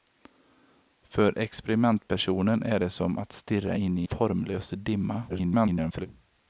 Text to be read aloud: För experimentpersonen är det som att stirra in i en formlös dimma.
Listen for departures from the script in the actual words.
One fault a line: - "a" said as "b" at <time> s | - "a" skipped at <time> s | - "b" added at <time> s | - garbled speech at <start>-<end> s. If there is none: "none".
- "en" skipped at 4.1 s
- garbled speech at 5.3-6.1 s